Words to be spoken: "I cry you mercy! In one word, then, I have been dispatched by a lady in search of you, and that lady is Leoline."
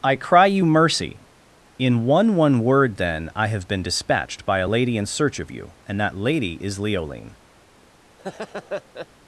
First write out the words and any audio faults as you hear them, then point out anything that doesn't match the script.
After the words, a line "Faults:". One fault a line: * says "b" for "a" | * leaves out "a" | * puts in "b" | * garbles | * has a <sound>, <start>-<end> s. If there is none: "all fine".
"I cry you mercy! In one one word, then, I have been dispatched by a lady in search of you, and that lady is Leoline."
Faults:
* puts in "one"
* has a laugh, 8.2-9.1 s